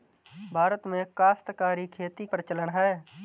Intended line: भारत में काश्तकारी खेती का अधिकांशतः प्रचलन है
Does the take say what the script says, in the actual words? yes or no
no